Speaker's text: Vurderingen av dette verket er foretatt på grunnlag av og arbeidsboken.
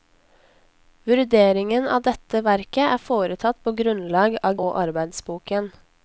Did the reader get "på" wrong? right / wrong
right